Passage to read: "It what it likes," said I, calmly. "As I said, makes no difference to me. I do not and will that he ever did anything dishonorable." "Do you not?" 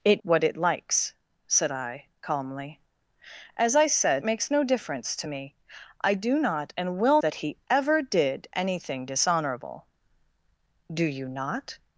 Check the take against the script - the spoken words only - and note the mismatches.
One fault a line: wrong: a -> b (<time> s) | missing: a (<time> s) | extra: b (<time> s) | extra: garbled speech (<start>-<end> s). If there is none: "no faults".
no faults